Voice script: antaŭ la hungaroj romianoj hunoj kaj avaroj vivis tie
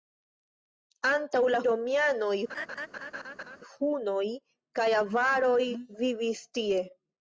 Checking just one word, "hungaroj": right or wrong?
wrong